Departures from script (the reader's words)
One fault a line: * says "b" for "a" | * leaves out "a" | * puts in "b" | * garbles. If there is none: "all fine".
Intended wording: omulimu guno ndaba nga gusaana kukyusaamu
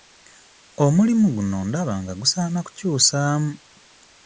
all fine